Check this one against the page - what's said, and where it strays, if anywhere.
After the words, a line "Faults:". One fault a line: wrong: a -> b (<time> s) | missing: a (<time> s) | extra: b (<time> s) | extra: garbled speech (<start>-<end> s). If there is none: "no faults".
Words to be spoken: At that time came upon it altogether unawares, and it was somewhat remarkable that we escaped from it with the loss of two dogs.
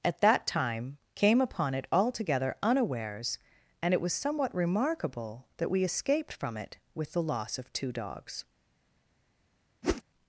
At that time came upon it altogether unawares, and it was somewhat remarkable that we escaped from it with the loss of two dogs.
Faults:
no faults